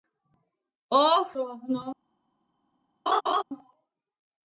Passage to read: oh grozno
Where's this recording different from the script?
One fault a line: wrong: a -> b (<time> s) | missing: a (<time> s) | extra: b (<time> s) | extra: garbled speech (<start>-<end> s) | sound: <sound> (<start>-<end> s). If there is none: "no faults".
sound: laugh (3.1-3.4 s)